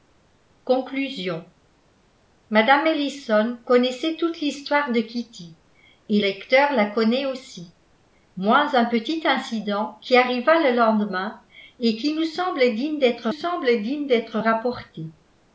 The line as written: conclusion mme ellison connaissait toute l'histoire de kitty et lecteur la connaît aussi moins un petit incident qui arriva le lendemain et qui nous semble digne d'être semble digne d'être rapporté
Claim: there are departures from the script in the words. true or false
false